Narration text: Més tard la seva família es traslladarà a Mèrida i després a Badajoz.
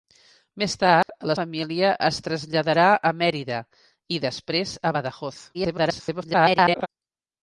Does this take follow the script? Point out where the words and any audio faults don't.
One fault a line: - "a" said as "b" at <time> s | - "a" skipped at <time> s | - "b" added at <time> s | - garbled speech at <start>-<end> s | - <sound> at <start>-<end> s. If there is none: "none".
- dropout at 1.0-1.1 s
- "seva" skipped at 1.4 s
- garbled speech at 5.5-6.9 s